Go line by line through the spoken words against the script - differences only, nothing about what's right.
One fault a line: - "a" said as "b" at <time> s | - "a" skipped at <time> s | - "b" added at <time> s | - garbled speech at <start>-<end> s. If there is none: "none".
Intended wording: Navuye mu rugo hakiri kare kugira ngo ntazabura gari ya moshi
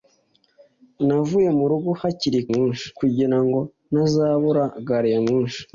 - "kare" said as "moshi" at 2.5 s